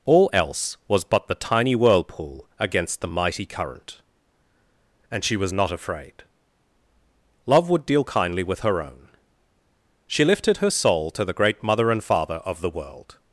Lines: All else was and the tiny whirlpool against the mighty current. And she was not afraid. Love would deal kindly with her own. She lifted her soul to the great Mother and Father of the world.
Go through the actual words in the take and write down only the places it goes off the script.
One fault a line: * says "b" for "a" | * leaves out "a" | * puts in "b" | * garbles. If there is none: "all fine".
* says "but" for "and"